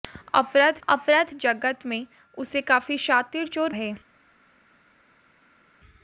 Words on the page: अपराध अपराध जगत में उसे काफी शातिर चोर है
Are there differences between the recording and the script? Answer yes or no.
no